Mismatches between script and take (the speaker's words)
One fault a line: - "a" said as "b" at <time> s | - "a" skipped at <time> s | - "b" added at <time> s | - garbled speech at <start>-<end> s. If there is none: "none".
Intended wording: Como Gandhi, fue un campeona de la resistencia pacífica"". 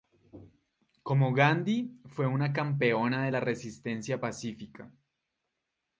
- "un" said as "una" at 2.2 s